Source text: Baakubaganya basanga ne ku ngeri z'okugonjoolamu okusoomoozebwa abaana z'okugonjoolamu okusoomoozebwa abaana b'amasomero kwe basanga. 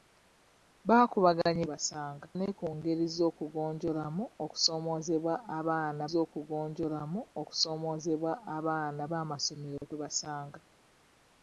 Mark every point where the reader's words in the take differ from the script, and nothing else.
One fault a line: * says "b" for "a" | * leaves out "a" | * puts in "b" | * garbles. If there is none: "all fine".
all fine